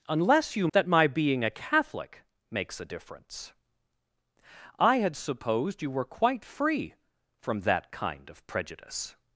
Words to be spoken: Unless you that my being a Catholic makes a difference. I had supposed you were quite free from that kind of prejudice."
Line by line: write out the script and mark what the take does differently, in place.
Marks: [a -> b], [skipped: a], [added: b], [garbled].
Unless you that my being a Catholic makes a difference. I had supposed you were quite free from that kind of prejudice."